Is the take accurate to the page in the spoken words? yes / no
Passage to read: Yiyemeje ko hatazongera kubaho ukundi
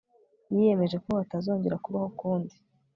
yes